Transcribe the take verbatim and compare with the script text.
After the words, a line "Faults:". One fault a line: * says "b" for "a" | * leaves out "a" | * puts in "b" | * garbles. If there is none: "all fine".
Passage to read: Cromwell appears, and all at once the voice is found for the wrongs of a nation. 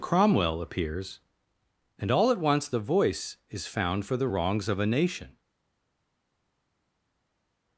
Cromwell appears, and all at once the voice is found for the wrongs of a nation.
Faults:
all fine